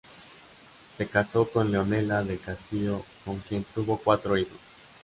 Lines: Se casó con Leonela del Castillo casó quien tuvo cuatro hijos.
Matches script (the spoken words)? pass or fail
fail